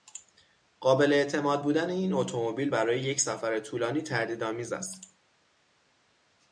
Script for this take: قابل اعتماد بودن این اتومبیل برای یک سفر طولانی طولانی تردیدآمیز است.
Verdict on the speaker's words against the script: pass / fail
fail